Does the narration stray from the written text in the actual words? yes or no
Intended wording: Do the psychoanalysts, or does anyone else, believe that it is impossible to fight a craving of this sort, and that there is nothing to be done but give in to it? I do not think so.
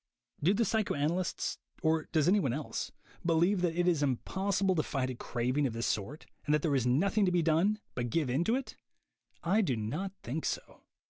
no